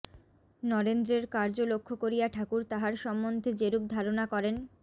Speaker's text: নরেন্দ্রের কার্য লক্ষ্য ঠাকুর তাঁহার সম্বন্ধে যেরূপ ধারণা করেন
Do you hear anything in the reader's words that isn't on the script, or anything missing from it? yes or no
yes